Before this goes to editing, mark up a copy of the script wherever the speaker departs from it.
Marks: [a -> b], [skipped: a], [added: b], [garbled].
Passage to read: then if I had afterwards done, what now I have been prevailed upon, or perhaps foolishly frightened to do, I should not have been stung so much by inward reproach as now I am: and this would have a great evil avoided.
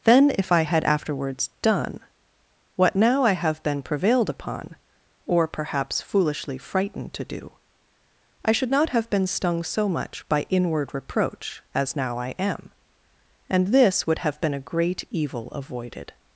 then if I had afterwards done, what now I have been prevailed upon, or perhaps foolishly frightened to do, I should not have been stung so much by inward reproach as now I am: and this would have [added: been] a great evil avoided.